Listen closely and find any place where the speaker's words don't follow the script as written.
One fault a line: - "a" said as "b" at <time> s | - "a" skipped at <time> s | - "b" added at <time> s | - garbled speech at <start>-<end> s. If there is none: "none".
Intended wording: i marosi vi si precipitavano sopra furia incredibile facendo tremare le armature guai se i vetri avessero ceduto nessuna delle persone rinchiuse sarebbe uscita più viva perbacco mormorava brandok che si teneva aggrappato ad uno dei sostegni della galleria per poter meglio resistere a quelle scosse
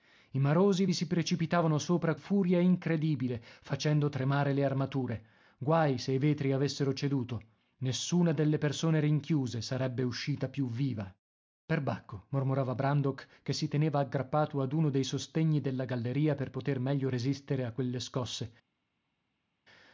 none